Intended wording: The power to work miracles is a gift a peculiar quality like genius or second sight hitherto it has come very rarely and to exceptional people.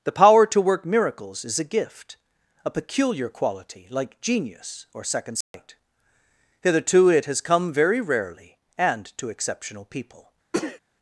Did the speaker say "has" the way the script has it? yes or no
yes